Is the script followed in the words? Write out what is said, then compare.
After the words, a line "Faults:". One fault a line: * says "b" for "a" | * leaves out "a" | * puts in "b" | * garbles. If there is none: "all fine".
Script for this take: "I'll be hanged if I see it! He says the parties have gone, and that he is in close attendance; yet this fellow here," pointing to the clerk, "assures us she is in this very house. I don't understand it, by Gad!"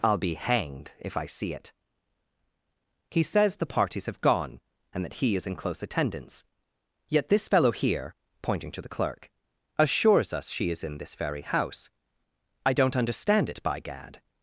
"I'll be hanged if I see it! He says the parties have gone, and that he is in close attendance; yet this fellow here," pointing to the clerk, "assures us she is in this very house. I don't understand it, by Gad!"
Faults:
all fine